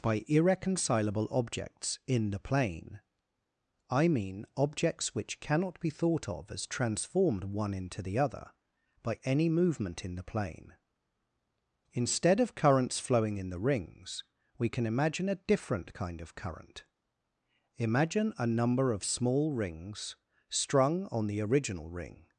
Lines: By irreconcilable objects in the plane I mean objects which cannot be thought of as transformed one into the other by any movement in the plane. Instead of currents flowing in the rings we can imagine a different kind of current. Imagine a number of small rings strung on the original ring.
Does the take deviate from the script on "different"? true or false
false